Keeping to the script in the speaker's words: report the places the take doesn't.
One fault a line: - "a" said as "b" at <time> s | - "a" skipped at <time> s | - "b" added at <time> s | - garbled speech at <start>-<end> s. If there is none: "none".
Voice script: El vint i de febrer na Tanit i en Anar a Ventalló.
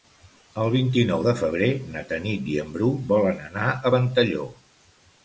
- "nou" added at 1.1 s
- "Bru volen" added at 2.8 s